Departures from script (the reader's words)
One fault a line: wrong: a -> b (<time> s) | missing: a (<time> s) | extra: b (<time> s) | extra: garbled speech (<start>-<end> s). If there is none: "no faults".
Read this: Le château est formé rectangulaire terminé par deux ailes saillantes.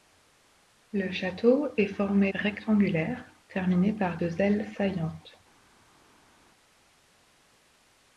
no faults